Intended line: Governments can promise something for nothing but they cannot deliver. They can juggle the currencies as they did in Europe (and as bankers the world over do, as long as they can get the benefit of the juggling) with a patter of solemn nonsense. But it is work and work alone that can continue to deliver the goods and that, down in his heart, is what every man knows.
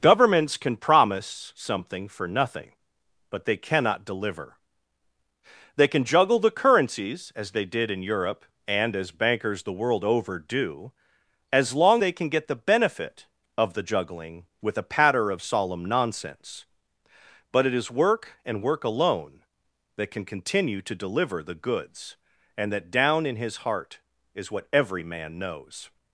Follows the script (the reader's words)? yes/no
no